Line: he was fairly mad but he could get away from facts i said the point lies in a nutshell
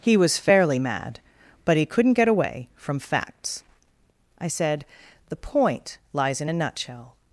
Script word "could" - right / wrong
wrong